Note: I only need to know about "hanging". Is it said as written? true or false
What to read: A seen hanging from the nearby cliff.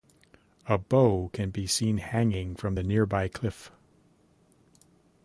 true